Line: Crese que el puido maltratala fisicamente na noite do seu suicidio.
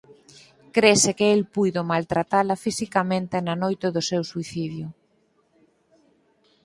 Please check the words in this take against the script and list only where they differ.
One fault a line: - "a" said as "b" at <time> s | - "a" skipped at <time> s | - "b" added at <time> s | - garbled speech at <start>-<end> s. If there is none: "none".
none